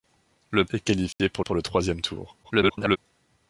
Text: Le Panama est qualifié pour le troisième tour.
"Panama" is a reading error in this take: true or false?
true